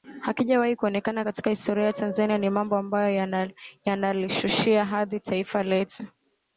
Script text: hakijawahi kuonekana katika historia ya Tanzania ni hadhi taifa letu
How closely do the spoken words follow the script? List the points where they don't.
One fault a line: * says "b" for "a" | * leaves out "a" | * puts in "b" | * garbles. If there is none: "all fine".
* puts in "mambo ambayo yanalishushia"